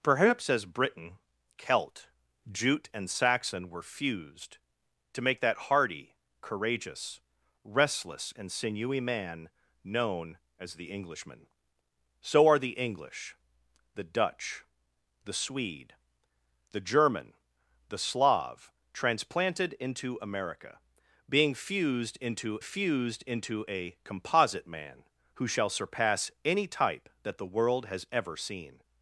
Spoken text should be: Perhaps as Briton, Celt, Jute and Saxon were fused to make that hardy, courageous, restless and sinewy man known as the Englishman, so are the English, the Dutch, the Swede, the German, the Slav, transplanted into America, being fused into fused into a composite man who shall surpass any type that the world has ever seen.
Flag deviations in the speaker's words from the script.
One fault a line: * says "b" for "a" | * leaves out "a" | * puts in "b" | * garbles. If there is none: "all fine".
all fine